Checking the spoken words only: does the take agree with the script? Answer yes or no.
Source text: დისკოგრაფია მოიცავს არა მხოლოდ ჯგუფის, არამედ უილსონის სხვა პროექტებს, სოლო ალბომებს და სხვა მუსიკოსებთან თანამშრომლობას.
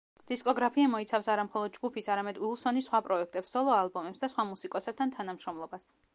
yes